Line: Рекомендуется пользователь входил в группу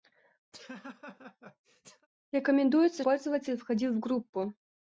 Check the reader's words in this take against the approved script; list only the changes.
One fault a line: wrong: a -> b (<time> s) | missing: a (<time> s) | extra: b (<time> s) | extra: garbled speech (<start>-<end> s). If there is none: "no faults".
no faults